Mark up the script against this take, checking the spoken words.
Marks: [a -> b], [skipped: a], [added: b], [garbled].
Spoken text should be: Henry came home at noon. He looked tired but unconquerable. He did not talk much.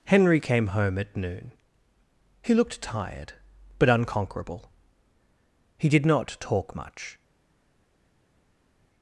Henry came home at noon. He looked tired but unconquerable. He did not talk much.